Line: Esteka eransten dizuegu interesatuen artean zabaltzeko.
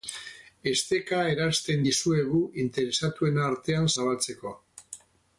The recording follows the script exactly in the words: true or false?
true